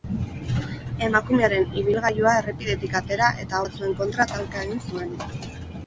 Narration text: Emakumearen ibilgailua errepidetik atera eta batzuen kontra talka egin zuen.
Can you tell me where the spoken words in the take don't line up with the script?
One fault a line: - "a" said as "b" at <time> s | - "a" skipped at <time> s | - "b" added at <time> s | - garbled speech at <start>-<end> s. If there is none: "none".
none